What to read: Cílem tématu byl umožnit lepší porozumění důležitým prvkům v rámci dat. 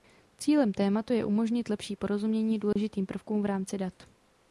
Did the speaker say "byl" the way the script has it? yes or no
no